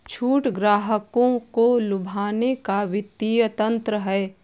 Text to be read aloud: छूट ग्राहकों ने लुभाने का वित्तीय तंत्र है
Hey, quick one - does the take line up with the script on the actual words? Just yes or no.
no